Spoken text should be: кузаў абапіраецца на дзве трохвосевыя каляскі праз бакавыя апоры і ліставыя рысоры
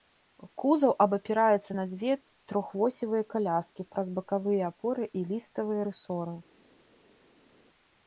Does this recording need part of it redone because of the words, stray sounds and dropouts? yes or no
no